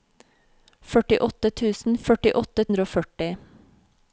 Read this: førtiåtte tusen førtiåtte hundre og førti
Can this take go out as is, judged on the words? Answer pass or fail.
pass